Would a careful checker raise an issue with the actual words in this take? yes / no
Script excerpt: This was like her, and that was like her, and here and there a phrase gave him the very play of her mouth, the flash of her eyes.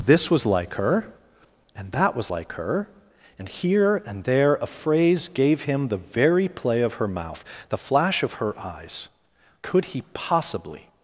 yes